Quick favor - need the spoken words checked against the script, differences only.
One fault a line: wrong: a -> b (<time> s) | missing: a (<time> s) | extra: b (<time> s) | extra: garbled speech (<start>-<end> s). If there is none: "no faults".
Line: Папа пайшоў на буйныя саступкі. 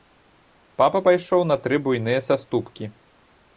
extra: тры (1.7 s)